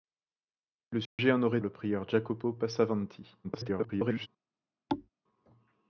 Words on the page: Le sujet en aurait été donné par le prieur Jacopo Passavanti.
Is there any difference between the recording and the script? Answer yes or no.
yes